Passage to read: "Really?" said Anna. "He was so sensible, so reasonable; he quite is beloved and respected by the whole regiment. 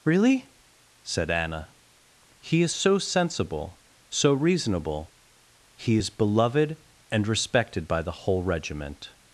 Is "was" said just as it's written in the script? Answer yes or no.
no